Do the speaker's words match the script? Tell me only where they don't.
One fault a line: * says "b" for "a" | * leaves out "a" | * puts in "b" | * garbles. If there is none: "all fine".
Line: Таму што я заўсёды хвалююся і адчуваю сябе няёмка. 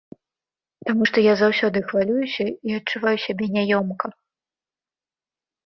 all fine